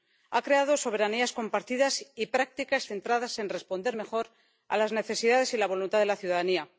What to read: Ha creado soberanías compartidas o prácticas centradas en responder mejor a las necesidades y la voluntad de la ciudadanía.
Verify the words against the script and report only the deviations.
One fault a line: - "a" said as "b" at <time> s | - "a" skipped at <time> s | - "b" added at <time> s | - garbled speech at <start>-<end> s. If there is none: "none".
- "o" said as "y" at 2.1 s